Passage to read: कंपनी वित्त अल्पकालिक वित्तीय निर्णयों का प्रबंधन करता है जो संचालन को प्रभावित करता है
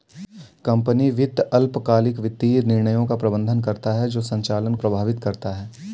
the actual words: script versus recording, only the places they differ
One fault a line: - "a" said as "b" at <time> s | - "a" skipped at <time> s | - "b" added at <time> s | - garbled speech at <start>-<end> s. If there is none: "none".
- "को" skipped at 4.8 s